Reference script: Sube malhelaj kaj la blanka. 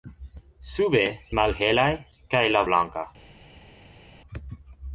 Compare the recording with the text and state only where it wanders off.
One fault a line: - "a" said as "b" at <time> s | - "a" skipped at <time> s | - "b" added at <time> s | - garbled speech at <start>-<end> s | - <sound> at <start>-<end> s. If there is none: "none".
none